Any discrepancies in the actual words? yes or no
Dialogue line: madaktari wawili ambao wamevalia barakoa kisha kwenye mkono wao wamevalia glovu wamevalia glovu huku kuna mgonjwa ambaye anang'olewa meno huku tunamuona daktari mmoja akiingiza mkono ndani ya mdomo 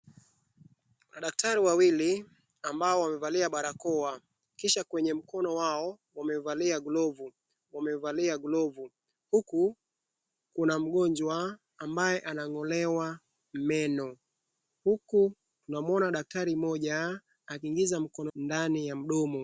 no